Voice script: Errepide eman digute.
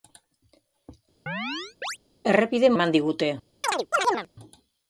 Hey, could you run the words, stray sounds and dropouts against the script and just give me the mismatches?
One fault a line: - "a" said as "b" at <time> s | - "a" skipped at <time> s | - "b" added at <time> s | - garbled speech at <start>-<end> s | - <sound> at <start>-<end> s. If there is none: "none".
- chirp at 1.3-2.0 s
- chirp at 3.6-4.3 s